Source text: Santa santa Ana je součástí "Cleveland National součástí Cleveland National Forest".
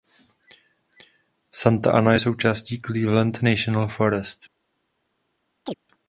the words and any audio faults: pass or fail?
fail